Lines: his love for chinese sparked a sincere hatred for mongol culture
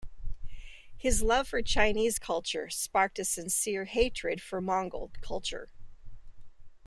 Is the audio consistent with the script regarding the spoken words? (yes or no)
no